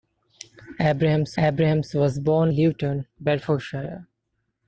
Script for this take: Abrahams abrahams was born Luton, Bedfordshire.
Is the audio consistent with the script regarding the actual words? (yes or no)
yes